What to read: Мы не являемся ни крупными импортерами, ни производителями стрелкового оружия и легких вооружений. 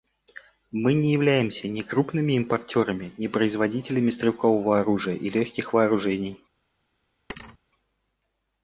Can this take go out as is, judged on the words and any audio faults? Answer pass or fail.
fail